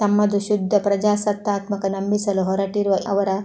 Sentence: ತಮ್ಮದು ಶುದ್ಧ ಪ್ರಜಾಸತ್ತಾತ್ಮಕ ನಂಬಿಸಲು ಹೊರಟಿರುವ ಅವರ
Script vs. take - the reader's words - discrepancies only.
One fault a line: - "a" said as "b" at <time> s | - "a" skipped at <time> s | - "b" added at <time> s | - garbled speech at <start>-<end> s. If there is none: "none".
none